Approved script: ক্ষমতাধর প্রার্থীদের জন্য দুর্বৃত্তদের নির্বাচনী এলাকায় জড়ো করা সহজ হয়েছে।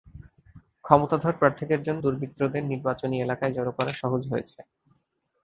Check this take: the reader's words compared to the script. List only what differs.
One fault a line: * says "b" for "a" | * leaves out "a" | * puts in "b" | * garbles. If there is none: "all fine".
all fine